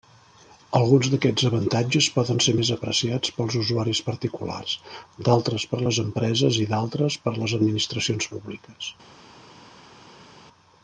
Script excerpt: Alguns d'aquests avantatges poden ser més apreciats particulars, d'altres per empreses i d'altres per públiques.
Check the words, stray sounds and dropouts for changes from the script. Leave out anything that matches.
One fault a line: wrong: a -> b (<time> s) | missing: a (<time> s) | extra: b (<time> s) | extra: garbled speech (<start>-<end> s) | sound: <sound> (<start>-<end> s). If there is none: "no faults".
extra: pels usuaris (3.4 s)
extra: les (5.9 s)
extra: les administracions (7.4 s)